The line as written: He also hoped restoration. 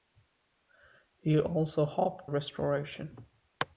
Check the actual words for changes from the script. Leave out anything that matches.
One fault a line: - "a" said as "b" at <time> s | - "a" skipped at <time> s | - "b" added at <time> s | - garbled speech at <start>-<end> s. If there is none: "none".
none